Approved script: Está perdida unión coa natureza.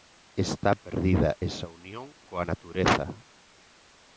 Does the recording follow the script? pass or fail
fail